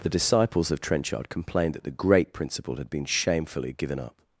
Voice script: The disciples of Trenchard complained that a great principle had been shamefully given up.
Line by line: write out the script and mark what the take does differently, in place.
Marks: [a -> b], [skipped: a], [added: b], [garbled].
The disciples of Trenchard complained that [a -> the] great principle had been shamefully given up.